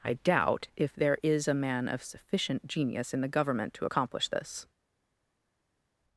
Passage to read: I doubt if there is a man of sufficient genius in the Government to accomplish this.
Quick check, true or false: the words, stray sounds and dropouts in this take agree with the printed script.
true